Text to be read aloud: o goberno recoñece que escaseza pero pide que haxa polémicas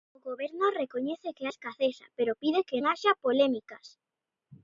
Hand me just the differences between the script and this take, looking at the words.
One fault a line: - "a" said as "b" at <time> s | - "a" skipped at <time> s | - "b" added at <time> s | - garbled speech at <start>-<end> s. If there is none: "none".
none